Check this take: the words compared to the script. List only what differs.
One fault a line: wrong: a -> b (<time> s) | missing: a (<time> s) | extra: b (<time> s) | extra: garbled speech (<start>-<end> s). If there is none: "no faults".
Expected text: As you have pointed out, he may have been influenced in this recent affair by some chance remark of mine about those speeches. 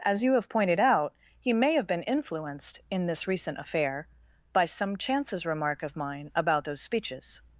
wrong: chance -> chances (5.0 s)